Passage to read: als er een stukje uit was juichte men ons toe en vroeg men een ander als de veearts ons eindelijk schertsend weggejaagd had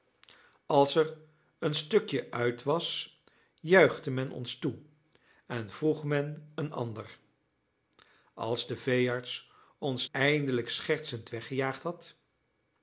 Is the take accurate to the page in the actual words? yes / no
yes